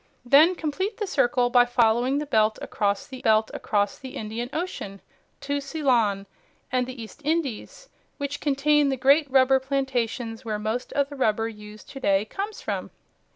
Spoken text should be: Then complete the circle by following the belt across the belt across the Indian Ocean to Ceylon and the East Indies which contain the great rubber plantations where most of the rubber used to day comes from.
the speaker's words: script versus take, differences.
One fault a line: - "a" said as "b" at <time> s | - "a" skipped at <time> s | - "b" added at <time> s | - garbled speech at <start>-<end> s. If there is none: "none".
none